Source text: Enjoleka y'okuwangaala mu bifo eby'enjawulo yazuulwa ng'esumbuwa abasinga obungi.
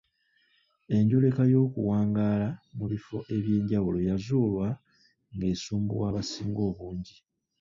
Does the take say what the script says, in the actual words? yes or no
yes